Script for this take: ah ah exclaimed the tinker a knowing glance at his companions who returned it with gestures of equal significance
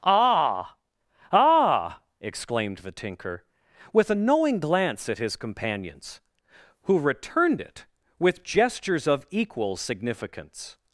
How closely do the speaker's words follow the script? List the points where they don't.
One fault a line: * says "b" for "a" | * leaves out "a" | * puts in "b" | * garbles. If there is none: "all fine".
* puts in "with"